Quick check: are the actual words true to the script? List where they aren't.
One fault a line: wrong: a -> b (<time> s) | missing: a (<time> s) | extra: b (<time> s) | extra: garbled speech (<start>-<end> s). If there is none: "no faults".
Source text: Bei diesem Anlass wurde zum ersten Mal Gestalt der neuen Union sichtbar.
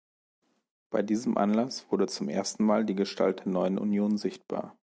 extra: die (2.8 s)